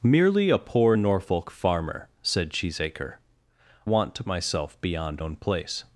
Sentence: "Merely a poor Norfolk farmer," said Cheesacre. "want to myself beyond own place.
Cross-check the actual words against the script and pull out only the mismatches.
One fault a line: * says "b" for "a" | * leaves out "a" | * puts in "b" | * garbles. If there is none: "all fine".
all fine